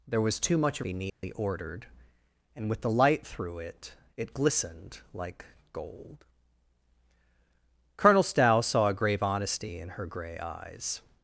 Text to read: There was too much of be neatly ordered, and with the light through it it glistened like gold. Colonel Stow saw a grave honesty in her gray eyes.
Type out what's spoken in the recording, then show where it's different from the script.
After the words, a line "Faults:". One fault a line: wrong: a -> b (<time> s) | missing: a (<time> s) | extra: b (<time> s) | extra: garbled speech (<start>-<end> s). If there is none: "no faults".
There was too much of be neatly ordered, and with the light through it it glistened like gold. Colonel Stow saw a grave honesty in her gray eyes.
Faults:
no faults